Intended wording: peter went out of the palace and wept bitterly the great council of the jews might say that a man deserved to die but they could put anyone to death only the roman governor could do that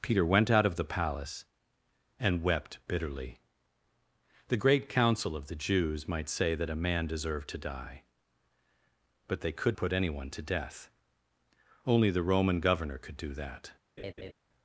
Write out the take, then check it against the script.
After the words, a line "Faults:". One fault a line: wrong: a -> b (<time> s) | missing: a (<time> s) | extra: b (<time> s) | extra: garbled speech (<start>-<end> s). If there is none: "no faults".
peter went out of the palace and wept bitterly the great council of the jews might say that a man deserved to die but they could put anyone to death only the roman governor could do that
Faults:
no faults